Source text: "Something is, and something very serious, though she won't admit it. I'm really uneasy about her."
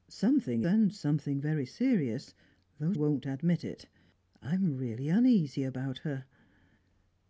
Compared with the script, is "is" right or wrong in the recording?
wrong